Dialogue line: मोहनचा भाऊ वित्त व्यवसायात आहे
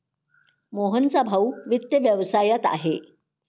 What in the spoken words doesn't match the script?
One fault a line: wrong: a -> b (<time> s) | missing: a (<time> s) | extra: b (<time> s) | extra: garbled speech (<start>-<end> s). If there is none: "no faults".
no faults